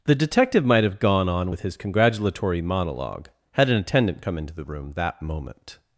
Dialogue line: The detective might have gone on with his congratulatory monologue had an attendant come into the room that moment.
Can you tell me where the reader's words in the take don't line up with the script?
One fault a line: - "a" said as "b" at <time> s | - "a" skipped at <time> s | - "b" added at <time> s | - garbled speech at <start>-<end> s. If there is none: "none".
none